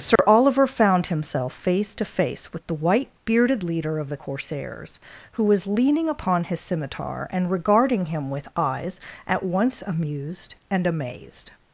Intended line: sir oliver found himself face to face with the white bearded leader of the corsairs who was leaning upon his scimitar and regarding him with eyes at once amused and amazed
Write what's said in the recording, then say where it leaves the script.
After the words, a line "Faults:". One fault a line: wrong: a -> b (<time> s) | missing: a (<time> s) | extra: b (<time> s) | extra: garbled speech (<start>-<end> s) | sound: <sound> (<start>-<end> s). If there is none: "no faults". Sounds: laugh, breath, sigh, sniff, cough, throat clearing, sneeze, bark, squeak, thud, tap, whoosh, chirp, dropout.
sir oliver found himself face to face with the white bearded leader of the corsairs who was leaning upon his scimitar and regarding him with eyes at once amused and amazed
Faults:
sound: dropout (0.2-0.2 s)